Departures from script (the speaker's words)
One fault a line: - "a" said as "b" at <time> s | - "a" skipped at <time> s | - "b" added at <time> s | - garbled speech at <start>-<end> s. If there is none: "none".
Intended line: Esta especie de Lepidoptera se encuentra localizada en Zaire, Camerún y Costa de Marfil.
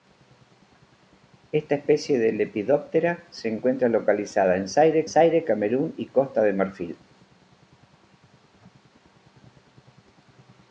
- "Zaire" added at 5.1 s